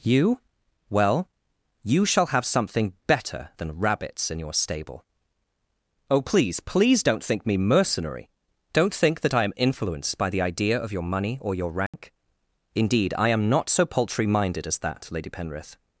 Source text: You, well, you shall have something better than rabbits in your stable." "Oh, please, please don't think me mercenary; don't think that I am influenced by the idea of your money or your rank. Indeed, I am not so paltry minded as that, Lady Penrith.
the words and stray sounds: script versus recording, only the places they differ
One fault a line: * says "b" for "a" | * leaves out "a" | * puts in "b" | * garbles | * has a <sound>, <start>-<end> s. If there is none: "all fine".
* has a dropout, 11.9-11.9 s